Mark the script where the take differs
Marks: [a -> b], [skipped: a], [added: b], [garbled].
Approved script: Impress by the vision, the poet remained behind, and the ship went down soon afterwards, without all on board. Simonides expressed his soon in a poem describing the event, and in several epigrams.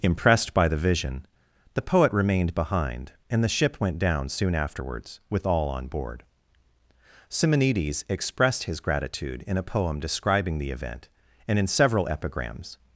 [Impress -> Impressed] by the vision, the poet remained behind, and the ship went down soon afterwards, [without -> with] all on board. Simonides expressed his [soon -> gratitude] in a poem describing the event, and in several epigrams.